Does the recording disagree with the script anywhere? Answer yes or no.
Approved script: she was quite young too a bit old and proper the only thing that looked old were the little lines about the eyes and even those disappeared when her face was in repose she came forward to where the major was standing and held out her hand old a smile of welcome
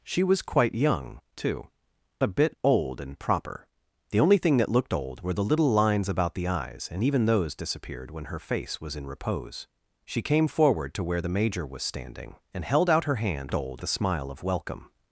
no